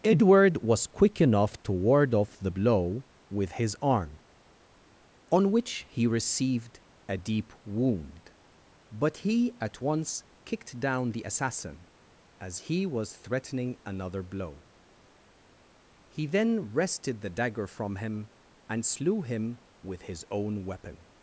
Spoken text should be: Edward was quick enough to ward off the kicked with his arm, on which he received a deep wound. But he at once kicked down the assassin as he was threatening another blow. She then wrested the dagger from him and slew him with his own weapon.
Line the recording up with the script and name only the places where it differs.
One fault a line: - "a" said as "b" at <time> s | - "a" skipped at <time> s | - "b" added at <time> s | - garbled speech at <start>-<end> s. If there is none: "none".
- "kicked" said as "blow" at 2.5 s
- "She" said as "He" at 16.1 s